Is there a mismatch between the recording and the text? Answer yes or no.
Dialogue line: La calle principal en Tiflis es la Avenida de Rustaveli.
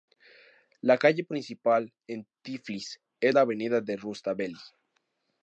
no